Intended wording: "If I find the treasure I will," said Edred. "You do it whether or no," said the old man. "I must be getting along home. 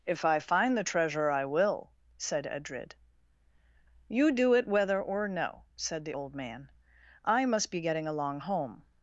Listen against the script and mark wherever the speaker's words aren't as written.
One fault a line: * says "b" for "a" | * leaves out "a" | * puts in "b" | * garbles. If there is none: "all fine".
all fine